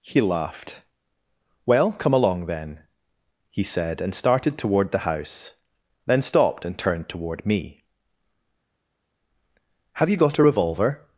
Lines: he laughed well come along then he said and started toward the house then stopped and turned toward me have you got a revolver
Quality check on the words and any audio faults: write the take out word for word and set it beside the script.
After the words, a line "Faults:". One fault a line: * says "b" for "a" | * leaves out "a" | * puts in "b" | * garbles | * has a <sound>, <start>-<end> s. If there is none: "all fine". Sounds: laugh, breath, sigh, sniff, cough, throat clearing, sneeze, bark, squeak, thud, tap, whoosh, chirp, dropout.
he laughed well come along then he said and started toward the house then stopped and turned toward me have you got a revolver
Faults:
all fine